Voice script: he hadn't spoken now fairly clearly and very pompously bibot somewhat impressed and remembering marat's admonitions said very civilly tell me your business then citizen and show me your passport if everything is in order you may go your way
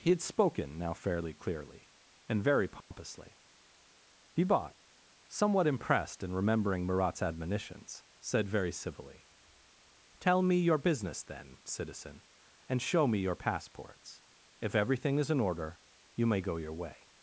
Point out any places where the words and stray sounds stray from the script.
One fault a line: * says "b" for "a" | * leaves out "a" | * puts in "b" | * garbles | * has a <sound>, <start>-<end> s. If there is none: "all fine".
* says "had" for "hadn't"
* has a dropout, 2.8-2.9 s
* says "passports" for "passport"